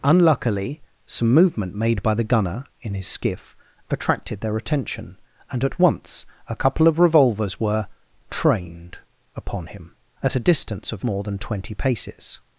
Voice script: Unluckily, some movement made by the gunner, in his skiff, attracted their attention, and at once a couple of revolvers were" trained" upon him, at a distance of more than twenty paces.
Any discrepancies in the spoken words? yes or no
no